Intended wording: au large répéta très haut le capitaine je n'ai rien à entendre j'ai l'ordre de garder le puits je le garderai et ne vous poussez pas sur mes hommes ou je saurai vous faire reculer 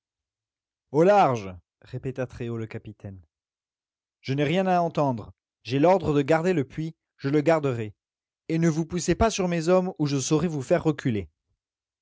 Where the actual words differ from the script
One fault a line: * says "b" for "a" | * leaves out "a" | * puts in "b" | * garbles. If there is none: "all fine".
all fine